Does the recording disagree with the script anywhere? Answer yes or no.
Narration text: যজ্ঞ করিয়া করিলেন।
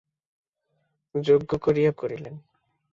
no